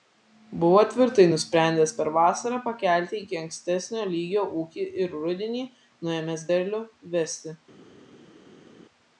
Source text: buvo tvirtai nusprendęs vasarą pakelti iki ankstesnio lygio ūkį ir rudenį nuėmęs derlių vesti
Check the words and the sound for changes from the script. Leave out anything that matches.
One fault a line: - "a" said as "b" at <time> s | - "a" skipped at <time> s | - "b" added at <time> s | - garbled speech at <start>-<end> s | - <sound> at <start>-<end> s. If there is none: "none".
- "per" added at 2.0 s